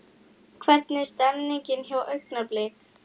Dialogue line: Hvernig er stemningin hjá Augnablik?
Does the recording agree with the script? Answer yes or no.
yes